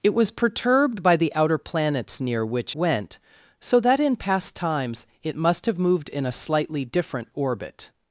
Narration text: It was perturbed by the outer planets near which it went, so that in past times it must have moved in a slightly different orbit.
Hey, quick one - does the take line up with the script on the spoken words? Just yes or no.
no